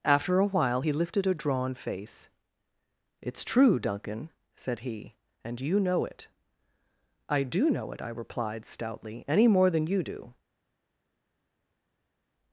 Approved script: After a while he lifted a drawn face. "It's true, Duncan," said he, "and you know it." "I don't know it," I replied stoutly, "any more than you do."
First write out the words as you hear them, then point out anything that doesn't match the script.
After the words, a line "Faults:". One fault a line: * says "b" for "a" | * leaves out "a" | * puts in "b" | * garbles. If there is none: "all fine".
After a while he lifted a drawn face. "It's true, Duncan," said he, "and you know it." "I do know it," I replied stoutly, "any more than you do."
Faults:
* says "do" for "don't"